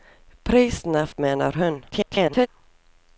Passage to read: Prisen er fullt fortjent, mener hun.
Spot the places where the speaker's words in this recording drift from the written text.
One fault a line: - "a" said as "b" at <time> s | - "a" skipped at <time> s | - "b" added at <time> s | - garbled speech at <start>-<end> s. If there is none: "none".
- "fullt fortjent" skipped at 1.1 s
- garbled speech at 1.9-2.5 s